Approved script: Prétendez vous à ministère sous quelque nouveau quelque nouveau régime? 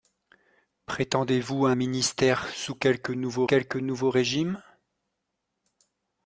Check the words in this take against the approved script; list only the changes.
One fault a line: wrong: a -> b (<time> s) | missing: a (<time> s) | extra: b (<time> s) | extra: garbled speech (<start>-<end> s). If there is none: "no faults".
no faults